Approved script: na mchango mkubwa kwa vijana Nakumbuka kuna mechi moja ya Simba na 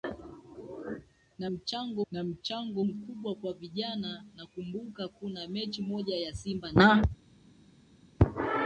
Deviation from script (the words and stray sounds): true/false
true